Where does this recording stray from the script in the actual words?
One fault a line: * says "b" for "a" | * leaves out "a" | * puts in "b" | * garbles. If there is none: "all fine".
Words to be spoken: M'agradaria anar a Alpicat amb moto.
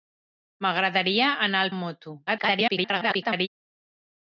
* leaves out "Alpicat"
* garbles